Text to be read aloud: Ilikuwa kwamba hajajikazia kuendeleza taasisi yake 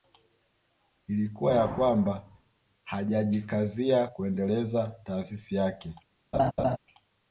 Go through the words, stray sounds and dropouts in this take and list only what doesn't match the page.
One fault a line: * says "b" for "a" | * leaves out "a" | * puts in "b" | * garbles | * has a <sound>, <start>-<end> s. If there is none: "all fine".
* puts in "ya"
* has a laugh, 6.3-6.8 s